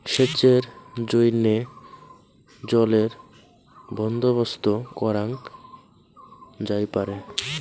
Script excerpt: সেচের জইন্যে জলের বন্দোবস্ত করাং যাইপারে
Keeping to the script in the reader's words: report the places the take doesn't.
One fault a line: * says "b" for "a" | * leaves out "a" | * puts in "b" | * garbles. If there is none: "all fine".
all fine